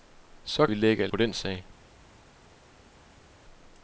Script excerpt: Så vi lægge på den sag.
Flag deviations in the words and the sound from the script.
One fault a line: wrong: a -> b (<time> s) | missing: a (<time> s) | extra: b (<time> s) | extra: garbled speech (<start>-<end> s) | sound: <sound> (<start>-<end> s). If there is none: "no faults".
no faults